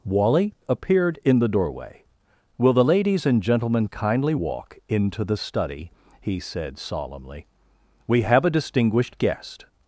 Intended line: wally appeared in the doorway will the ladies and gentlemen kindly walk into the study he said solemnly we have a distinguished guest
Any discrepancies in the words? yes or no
no